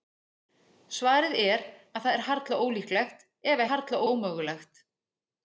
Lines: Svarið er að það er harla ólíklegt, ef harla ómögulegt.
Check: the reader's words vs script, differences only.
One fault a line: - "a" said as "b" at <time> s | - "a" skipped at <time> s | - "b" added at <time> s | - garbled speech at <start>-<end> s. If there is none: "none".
none